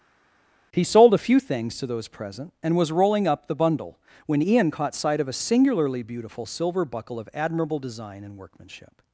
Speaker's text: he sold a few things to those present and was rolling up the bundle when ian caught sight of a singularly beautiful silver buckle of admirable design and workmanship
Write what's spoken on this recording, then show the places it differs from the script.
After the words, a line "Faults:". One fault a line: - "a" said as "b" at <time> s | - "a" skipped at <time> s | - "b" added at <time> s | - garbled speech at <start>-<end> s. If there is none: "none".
he sold a few things to those present and was rolling up the bundle when ian caught sight of a singularly beautiful silver buckle of admirable design and workmanship
Faults:
none